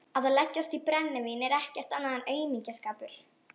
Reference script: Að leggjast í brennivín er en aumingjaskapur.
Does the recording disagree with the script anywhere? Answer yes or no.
yes